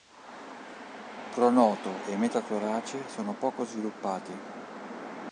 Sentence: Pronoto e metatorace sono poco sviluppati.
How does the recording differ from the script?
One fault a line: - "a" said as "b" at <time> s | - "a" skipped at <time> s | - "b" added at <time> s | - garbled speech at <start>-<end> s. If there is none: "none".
none